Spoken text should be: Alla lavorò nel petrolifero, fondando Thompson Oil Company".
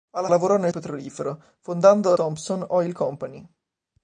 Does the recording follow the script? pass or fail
pass